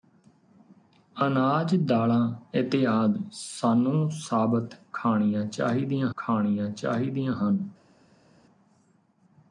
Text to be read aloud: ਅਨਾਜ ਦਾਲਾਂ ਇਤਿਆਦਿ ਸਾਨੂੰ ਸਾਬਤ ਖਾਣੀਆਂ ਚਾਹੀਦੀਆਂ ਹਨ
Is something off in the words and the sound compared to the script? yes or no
yes